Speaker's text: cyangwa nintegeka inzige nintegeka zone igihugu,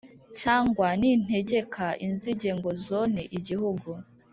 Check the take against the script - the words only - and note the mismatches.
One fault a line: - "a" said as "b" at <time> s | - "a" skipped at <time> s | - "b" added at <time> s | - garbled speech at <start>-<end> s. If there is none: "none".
- "nintegeka" said as "ngo" at 2.6 s